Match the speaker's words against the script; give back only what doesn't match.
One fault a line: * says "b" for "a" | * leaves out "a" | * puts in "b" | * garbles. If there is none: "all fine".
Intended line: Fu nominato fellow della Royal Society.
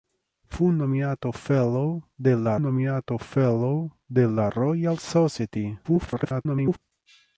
* puts in "nominato fellow della"
* garbles